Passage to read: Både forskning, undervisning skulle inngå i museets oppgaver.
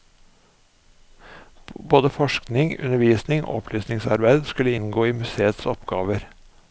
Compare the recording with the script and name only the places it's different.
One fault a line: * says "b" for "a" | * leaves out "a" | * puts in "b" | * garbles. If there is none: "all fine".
* puts in "og opplysningsarbeid"